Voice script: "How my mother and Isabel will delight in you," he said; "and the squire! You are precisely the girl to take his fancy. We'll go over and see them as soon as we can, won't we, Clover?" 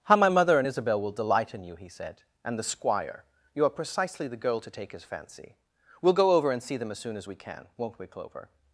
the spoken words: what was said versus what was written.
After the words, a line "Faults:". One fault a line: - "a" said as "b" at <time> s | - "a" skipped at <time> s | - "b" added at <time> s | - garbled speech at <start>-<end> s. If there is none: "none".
"How my mother and Isabel will delight in you," he said; "and the squire! You are precisely the girl to take his fancy. We'll go over and see them as soon as we can, won't we, Clover?"
Faults:
none